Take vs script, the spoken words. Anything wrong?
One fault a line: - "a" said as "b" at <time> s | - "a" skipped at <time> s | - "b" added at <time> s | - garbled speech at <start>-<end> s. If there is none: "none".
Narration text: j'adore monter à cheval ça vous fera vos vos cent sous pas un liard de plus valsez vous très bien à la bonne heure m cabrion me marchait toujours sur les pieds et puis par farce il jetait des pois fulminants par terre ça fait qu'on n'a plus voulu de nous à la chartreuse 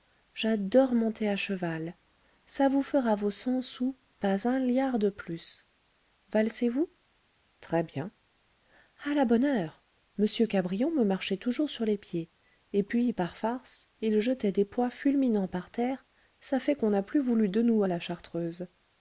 - "vos" skipped at 3.3 s